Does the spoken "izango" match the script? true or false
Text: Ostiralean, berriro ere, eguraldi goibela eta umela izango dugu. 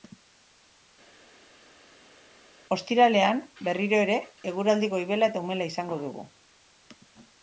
true